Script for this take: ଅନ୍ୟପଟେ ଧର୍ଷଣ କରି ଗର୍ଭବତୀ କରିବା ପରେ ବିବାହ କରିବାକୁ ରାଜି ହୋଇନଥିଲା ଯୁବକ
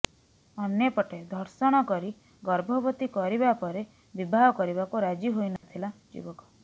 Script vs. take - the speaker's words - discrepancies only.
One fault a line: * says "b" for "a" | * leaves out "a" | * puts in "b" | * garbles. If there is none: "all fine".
all fine